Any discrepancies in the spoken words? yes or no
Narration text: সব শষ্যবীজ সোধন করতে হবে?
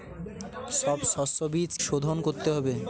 no